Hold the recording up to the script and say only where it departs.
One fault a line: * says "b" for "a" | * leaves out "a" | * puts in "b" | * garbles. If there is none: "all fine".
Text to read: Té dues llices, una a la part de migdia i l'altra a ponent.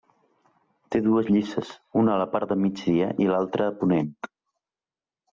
all fine